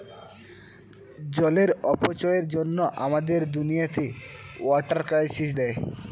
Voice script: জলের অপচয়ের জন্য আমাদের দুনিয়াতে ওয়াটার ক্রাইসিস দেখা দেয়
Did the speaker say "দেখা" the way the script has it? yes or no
no